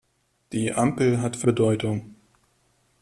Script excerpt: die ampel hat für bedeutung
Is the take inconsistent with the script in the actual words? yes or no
no